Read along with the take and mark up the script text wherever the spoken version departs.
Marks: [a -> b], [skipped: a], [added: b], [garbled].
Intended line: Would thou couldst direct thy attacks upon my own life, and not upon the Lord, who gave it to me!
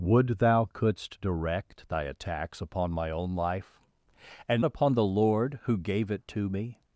Would thou couldst direct thy attacks upon my own life, and [skipped: not] upon the Lord, who gave it to me!